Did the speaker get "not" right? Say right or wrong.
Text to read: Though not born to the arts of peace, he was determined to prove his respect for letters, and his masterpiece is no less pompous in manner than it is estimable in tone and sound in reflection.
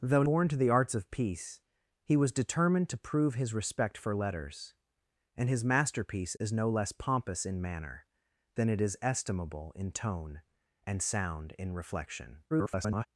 wrong